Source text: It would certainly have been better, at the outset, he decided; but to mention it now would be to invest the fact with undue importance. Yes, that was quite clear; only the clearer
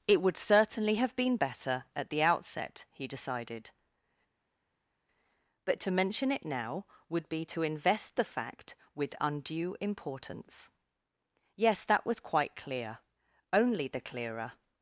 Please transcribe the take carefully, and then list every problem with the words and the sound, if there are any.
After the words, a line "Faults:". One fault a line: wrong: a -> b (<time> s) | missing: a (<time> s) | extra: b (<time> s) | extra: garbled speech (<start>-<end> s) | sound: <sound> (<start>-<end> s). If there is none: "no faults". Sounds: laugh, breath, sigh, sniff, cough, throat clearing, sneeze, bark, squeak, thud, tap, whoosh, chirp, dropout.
It would certainly have been better, at the outset, he decided; but to mention it now would be to invest the fact with undue importance. Yes, that was quite clear; only the clearer
Faults:
no faults